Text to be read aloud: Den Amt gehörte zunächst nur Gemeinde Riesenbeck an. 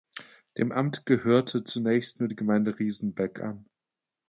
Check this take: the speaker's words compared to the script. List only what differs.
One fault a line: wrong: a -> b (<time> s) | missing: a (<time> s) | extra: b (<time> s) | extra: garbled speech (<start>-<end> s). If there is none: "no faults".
wrong: Den -> Dem (0.6 s)
extra: die (2.3 s)